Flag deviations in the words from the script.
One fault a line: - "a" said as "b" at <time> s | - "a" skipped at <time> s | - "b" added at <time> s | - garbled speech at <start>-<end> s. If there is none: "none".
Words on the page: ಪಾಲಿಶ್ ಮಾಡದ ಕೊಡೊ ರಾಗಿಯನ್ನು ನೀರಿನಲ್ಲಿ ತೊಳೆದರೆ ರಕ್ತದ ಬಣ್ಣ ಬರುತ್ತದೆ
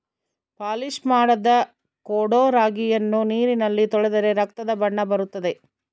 none